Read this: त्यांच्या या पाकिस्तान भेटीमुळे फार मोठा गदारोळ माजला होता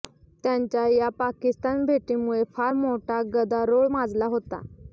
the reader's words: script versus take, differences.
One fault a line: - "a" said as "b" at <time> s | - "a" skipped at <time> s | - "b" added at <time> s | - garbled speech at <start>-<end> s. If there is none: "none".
none